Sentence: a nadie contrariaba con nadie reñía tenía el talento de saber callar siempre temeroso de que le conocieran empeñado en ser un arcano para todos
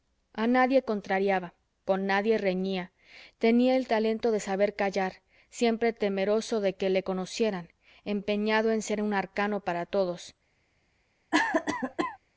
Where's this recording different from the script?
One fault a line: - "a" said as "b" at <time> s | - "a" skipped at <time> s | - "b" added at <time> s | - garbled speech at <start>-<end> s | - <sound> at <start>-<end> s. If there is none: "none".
- cough at 11.3-12.2 s